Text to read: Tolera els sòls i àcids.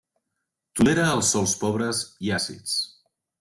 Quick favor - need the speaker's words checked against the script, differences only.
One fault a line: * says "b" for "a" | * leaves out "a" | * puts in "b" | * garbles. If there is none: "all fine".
* puts in "pobres"